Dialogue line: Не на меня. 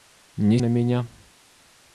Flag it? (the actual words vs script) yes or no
no